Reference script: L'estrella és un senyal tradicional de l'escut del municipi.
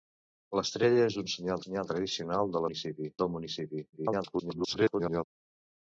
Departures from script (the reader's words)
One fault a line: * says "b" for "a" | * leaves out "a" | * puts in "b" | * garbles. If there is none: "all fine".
* puts in "senyal"
* says "municipi" for "l'escut"
* garbles